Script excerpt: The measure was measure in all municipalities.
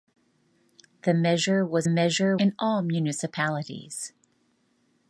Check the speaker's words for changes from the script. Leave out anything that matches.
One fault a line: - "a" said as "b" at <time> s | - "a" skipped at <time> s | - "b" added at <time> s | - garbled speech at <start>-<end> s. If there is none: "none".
none